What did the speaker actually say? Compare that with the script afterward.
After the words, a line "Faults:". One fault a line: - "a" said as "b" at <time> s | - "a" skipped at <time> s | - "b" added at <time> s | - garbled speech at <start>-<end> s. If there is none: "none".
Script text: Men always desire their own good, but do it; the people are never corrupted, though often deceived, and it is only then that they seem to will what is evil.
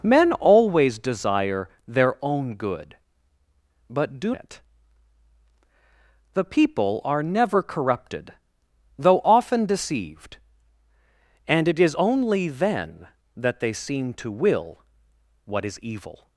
Men always desire their own good, but do it; the people are never corrupted, though often deceived, and it is only then that they seem to will what is evil.
Faults:
none